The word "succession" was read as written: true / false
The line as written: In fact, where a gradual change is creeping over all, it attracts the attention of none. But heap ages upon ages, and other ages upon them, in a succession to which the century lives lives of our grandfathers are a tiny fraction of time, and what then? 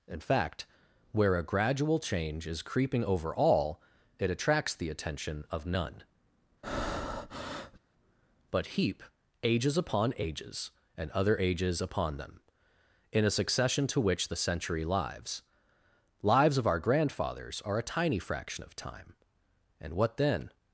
true